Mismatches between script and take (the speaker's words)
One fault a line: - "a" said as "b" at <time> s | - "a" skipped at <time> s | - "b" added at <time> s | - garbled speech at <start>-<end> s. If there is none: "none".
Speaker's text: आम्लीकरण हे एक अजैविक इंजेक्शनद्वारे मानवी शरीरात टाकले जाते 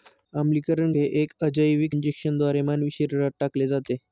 none